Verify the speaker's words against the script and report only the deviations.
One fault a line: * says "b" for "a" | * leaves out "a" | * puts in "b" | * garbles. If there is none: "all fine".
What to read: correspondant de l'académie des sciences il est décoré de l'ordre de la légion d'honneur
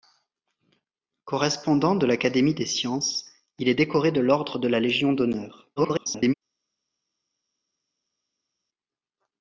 * garbles